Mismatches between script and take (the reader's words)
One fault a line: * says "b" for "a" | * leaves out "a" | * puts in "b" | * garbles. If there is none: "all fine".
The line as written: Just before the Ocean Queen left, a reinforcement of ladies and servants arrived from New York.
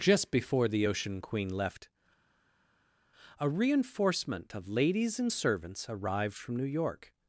all fine